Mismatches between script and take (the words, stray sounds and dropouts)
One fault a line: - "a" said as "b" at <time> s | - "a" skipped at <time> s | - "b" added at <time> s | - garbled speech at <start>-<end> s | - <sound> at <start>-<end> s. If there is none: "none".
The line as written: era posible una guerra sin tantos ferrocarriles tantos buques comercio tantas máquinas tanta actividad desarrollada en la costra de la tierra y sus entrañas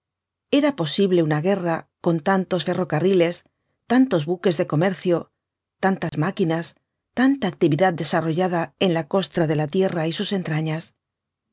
- "sin" said as "con" at 2.0 s
- "de" added at 4.6 s
- dropout at 6.1-6.1 s